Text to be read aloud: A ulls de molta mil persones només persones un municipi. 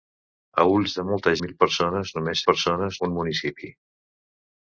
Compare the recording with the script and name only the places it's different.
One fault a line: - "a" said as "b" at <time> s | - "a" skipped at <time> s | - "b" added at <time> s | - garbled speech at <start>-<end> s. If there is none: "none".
none